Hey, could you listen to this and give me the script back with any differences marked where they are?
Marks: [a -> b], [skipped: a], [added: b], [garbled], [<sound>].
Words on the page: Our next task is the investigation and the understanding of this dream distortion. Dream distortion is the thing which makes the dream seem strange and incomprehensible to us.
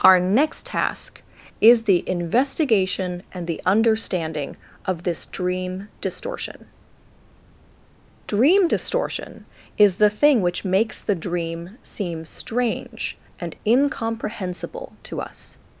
Our next task is the investigation and the understanding of this dream distortion. Dream distortion is the thing which makes the dream seem strange and incomprehensible to us.